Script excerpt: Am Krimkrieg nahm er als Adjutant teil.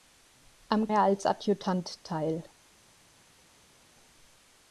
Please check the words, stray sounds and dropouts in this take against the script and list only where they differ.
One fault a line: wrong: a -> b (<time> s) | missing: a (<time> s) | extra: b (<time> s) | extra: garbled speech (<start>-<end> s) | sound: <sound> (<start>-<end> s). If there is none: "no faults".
missing: Krimkrieg nahm (0.9 s)